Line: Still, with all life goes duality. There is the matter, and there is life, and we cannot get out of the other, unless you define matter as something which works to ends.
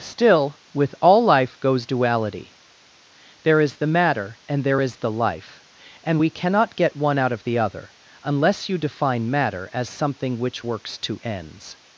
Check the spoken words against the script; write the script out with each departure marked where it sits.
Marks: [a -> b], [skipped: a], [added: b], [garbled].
Still, with all life goes duality. There is the matter, and there is [added: the] life, and we cannot get [added: one] out of the other, unless you define matter as something which works to ends.